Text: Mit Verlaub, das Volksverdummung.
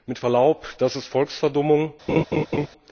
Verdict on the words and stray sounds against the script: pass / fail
fail